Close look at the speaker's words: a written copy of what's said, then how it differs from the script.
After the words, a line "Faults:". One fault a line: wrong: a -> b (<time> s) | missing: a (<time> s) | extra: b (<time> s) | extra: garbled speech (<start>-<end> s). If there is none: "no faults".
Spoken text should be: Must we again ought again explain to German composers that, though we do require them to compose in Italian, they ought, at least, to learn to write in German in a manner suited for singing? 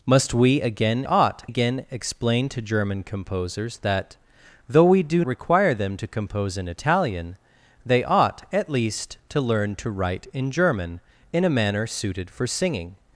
Must we again ought again explain to German composers that, though we do require them to compose in Italian, they ought, at least, to learn to write in German in a manner suited for singing?
Faults:
no faults